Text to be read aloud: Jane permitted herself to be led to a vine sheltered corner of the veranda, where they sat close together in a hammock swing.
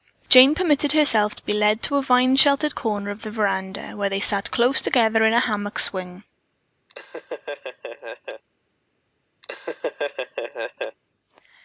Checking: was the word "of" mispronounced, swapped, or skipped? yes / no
no